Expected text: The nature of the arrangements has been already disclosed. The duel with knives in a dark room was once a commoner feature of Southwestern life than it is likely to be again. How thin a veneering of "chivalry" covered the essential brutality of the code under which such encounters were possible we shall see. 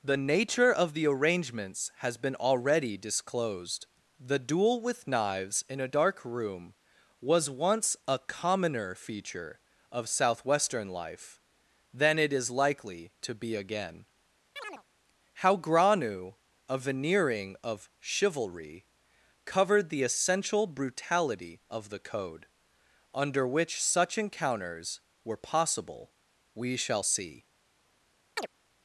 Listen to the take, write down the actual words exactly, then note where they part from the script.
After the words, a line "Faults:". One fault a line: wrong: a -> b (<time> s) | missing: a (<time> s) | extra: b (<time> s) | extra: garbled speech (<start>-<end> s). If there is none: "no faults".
The nature of the arrangements has been already disclosed. The duel with knives in a dark room was once a commoner feature of Southwestern life than it is likely to be again. How granu a veneering of "chivalry" covered the essential brutality of the code under which such encounters were possible we shall see.
Faults:
wrong: thin -> granu (15.6 s)